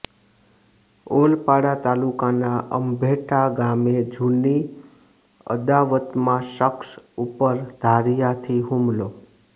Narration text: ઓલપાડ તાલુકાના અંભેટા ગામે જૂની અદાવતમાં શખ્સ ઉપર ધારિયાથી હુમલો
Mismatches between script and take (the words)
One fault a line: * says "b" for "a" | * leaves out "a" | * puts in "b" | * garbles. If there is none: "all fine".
all fine